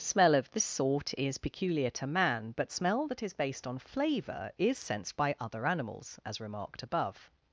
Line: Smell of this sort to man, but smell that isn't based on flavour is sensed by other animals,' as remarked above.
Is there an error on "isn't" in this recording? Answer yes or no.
yes